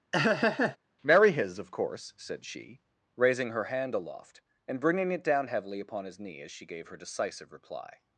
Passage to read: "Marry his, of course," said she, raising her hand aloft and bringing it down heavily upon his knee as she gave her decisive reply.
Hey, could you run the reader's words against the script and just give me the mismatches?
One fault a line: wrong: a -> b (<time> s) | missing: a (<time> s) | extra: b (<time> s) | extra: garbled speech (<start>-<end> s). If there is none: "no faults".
no faults